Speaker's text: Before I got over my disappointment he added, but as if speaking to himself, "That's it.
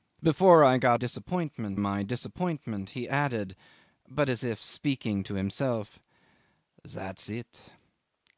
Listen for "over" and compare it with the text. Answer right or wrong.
wrong